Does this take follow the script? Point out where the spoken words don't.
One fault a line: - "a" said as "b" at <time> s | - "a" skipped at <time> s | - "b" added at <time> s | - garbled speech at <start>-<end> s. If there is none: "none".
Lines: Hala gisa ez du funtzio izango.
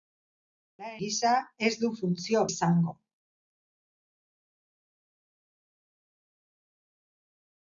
none